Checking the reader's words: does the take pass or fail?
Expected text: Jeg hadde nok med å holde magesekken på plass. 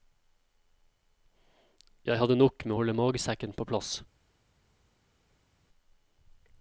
pass